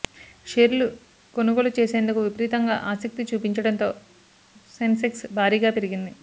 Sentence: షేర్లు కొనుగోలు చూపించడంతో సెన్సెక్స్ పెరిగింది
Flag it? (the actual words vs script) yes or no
yes